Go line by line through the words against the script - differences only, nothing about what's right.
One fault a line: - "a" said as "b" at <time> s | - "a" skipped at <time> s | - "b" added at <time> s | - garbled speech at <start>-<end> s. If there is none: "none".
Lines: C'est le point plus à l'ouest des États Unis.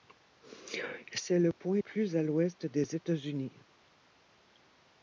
none